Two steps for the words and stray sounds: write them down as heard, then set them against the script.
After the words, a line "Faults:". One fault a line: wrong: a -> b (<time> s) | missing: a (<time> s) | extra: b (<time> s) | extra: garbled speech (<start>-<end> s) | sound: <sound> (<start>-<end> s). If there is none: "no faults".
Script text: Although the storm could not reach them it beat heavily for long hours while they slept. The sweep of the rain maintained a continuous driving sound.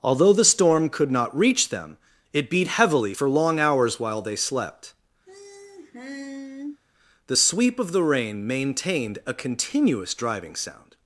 Although the storm could not reach them it beat heavily for long hours while they slept. The sweep of the rain maintained a continuous driving sound.
Faults:
sound: sigh (5.3-6.8 s)